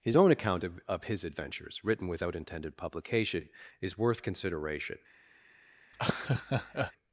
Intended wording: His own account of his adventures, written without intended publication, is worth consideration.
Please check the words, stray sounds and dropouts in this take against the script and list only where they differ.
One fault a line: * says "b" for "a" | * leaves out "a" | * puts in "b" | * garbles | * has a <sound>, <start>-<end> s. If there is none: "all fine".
* puts in "of"
* has a laugh, 5.9-6.9 s